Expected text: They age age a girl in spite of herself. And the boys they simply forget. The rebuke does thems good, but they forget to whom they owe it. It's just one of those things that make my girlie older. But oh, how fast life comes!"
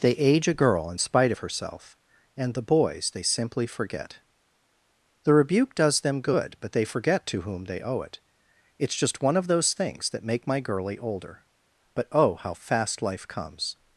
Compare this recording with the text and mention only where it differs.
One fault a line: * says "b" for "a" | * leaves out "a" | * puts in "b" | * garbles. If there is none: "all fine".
* leaves out "age"
* says "them" for "thems"